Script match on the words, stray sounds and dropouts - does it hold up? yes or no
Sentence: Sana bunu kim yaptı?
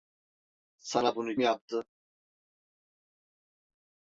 no